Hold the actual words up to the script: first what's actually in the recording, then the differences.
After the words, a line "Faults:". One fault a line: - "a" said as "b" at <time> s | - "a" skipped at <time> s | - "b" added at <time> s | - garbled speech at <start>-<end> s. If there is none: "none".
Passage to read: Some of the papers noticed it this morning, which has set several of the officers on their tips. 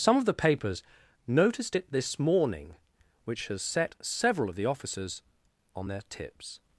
Some of the papers noticed it this morning, which has set several of the officers on their tips.
Faults:
none